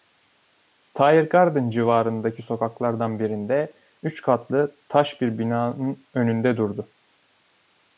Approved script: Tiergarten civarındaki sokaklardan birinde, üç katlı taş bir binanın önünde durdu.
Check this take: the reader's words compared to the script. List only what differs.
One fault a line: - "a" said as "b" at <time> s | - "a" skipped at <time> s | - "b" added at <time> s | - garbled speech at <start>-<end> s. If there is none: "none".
none